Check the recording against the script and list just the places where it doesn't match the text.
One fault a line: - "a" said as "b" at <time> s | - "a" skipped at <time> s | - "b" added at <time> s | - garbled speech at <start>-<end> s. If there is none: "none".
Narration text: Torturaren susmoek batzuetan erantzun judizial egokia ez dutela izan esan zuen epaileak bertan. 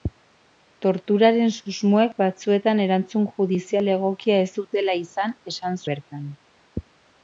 - "zuen epaileak" skipped at 5.8 s